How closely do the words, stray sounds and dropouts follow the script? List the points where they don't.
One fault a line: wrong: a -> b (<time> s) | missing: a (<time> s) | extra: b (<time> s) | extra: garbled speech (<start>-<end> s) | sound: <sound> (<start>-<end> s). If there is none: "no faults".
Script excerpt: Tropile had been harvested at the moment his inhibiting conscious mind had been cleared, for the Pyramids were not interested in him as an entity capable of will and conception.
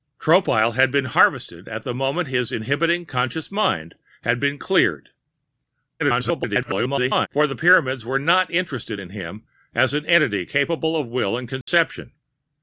extra: garbled speech (6.0-7.3 s)
sound: dropout (11.6-11.7 s)